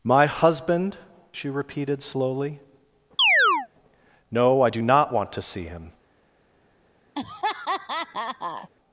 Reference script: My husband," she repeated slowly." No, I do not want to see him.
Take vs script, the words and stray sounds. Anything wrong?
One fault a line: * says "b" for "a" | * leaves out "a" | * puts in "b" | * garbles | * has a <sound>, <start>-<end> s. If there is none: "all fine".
* has a chirp, 3.2-3.7 s
* has a laugh, 7.2-8.7 s